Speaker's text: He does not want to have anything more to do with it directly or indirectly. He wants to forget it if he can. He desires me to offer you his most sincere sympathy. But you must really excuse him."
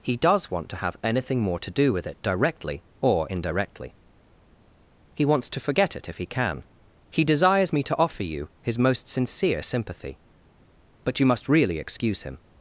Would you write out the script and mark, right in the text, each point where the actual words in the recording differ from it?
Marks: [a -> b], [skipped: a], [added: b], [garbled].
He does [skipped: not] want to have anything more to do with it directly or indirectly. He wants to forget it if he can. He desires me to offer you his most sincere sympathy. But you must really excuse him."